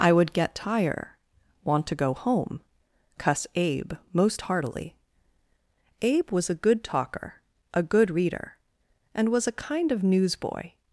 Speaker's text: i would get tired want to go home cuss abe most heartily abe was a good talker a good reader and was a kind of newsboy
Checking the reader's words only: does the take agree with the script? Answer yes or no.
no